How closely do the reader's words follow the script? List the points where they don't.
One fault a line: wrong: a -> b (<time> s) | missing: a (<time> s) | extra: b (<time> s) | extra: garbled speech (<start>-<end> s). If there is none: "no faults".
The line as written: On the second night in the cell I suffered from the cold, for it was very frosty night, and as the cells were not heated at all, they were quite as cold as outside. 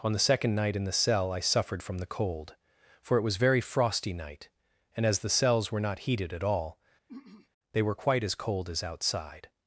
no faults